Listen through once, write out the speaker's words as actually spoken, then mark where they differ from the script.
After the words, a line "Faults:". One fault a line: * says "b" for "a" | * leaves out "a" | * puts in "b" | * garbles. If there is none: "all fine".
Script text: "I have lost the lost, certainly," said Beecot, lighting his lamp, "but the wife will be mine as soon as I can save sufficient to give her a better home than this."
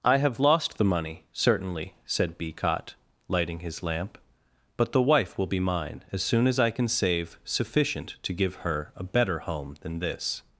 "I have lost the money, certainly," said Beecot, lighting his lamp, "but the wife will be mine as soon as I can save sufficient to give her a better home than this."
Faults:
* says "money" for "lost"